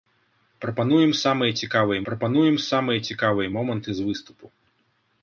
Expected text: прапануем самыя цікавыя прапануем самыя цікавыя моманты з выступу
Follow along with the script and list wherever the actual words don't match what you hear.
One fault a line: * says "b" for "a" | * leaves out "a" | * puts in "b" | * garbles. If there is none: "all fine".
all fine